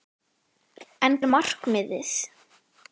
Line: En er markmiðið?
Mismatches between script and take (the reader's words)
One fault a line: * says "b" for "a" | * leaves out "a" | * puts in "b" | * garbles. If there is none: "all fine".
all fine